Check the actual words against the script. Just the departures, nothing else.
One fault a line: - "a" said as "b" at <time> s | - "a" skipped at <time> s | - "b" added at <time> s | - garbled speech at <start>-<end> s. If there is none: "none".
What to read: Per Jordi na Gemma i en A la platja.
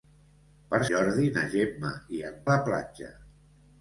none